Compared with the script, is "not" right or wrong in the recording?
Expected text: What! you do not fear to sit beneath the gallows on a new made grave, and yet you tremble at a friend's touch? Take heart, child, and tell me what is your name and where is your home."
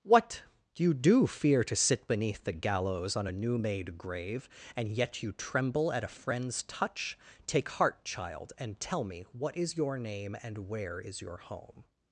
wrong